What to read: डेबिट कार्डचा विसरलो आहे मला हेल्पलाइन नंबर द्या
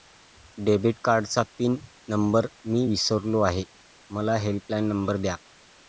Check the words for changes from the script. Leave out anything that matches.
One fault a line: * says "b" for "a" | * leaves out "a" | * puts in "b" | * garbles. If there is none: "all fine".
* puts in "पिन नंबर मी"